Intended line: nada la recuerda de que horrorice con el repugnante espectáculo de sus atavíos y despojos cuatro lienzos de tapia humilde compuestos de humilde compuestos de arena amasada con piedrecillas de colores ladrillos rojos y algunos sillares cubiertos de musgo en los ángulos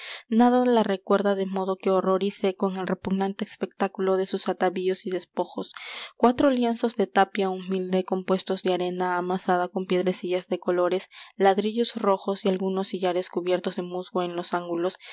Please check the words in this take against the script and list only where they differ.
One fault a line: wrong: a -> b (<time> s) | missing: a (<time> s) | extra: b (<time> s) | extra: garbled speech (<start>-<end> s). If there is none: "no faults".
extra: modo (1.4 s)
missing: humilde compuestos de (8.7 s)